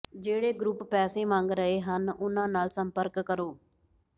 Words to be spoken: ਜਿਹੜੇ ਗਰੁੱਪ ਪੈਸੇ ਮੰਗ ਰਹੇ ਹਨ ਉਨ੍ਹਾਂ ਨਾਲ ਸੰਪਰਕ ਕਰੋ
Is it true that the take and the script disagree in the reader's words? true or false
false